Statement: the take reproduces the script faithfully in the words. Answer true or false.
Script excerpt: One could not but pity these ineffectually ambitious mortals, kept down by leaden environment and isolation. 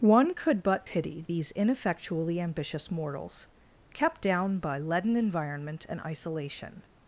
false